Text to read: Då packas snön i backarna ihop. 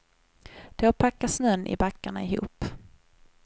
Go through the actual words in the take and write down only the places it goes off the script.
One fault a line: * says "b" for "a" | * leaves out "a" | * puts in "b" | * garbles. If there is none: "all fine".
all fine